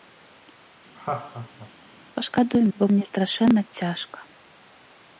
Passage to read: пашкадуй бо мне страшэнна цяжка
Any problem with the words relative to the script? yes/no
no